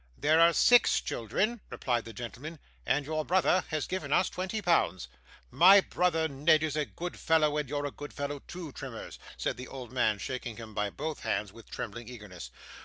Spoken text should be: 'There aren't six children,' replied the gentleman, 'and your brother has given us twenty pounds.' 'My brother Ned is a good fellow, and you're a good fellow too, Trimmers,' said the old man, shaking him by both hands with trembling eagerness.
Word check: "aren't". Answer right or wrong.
wrong